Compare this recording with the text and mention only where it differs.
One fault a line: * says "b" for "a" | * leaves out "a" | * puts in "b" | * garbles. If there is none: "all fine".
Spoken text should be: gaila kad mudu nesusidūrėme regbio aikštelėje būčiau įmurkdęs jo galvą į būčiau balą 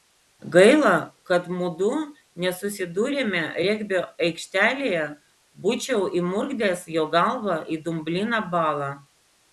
* says "dumbliną" for "būčiau"